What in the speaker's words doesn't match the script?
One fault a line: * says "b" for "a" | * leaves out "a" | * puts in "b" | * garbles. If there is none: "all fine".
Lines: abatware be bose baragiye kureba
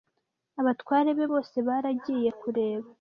all fine